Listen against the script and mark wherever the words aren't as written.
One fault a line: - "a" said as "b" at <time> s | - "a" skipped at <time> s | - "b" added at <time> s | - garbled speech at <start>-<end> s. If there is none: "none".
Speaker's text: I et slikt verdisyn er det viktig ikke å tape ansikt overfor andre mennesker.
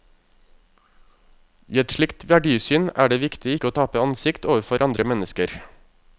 none